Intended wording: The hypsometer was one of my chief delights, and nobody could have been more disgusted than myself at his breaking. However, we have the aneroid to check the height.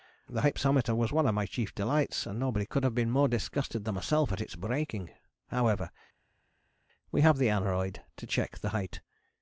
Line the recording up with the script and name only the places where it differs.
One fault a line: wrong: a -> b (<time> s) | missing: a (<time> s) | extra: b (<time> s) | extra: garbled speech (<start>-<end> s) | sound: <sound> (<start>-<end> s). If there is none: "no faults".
wrong: his -> its (4.4 s)